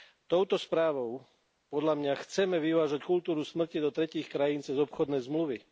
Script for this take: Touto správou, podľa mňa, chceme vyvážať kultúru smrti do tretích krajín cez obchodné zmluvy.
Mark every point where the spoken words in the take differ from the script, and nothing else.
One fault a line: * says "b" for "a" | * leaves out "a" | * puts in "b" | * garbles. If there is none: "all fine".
all fine